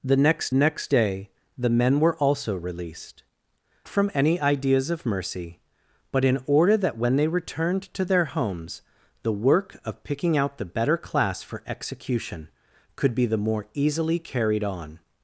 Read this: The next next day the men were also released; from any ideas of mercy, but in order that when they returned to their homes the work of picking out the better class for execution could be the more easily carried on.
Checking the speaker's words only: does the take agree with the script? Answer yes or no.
yes